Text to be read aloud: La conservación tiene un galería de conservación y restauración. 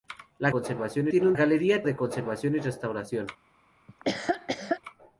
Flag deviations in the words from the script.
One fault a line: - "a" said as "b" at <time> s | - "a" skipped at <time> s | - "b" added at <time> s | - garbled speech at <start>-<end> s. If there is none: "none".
none